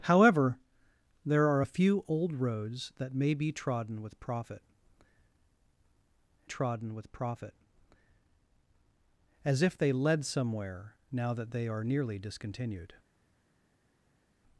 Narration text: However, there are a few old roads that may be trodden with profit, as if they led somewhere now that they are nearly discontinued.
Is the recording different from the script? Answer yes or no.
yes